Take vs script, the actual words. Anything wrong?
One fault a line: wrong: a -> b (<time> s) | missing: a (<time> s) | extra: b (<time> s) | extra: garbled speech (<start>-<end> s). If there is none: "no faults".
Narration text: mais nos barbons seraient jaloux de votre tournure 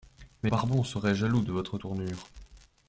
missing: nos (0.5 s)